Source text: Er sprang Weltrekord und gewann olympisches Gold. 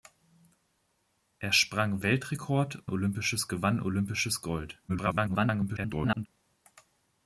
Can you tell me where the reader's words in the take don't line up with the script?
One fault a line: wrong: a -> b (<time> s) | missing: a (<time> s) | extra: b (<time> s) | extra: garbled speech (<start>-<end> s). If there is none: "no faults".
wrong: und -> olympisches (2.9 s)
extra: garbled speech (4.9-6.3 s)